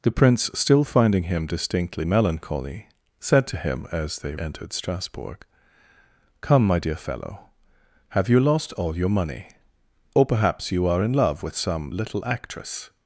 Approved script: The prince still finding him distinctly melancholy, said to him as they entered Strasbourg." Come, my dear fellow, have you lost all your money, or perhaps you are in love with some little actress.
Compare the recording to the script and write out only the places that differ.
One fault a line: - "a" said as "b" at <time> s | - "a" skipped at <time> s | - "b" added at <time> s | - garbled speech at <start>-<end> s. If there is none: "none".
none